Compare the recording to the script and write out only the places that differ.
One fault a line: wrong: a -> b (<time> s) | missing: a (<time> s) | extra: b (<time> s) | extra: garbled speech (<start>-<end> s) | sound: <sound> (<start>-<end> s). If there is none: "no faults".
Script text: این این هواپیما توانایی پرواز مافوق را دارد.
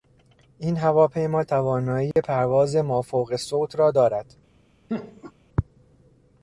missing: این (0.8 s)
sound: dropout (2.1-2.2 s)
extra: صوت (3.4 s)
sound: laugh (4.9-5.3 s)